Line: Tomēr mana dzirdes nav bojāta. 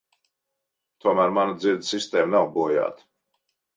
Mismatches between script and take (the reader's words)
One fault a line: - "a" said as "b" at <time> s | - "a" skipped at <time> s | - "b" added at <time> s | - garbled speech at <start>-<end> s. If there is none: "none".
- "sistēma" added at 2.0 s